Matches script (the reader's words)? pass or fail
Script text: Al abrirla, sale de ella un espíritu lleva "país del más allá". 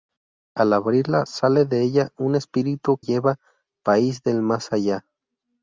pass